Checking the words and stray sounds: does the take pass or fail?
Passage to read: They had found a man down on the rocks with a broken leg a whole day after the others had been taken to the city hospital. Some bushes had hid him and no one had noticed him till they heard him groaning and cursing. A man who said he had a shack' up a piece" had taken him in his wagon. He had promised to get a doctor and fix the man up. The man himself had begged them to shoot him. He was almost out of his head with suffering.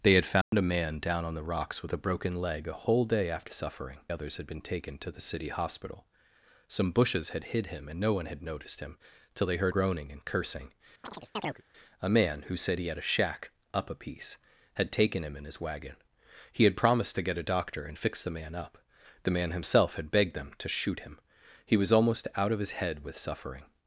fail